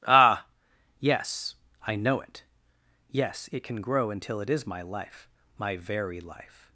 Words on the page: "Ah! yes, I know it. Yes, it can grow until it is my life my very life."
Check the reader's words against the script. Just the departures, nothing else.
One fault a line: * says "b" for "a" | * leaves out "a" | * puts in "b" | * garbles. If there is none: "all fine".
all fine